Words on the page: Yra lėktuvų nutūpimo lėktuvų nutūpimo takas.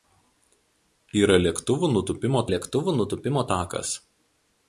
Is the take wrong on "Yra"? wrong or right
right